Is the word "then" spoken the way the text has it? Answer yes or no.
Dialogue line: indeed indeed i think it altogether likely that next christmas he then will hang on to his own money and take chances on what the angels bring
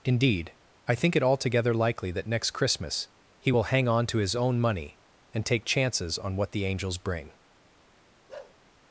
no